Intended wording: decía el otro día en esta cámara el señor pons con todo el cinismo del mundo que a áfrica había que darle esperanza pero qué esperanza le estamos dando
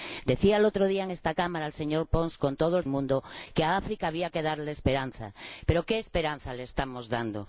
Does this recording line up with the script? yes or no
no